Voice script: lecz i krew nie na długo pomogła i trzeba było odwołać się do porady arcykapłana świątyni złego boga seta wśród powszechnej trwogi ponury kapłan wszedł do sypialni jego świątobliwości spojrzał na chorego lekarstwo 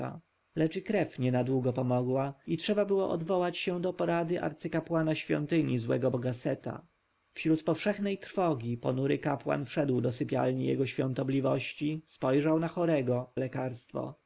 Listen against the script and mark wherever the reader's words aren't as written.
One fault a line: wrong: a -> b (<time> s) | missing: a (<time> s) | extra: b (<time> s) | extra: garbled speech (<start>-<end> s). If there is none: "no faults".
no faults